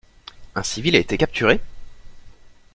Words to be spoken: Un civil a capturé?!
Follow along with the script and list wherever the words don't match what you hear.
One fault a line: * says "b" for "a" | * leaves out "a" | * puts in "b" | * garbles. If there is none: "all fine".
* puts in "été"